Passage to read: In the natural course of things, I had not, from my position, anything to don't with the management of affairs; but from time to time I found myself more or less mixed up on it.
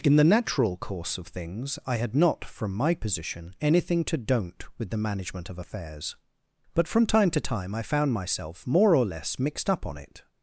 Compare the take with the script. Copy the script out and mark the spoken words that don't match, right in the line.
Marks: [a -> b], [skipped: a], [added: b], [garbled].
In the natural course of things, I had not, from my position, anything to don't with the management of affairs; but from time to time I found myself more or less mixed up on it.